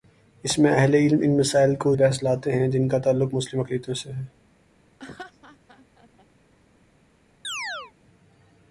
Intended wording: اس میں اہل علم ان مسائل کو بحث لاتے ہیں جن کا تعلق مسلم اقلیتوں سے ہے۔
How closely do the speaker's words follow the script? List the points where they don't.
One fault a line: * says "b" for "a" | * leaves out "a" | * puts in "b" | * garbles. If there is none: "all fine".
all fine